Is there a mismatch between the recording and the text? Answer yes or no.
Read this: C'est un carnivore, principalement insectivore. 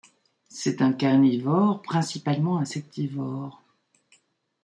no